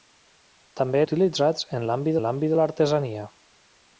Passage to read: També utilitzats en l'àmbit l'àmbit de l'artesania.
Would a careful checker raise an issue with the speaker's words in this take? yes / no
no